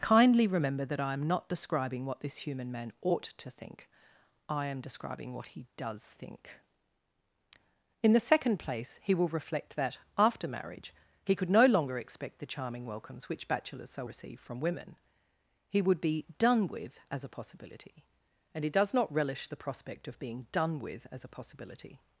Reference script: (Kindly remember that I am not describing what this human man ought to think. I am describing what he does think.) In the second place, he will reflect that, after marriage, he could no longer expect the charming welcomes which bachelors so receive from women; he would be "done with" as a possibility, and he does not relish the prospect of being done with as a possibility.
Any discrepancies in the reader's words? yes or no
no